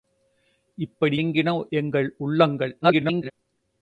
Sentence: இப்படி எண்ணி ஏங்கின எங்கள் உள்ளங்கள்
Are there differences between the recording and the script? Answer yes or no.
yes